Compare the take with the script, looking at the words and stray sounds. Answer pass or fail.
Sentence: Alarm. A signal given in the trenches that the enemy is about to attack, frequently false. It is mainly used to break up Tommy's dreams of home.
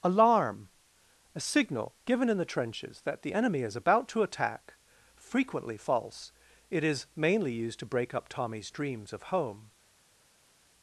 pass